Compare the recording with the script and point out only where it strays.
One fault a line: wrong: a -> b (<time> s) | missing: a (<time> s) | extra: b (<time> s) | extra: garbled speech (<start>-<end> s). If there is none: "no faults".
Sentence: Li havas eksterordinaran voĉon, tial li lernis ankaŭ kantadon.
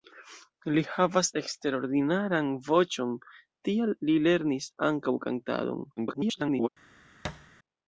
extra: garbled speech (6.0-6.7 s)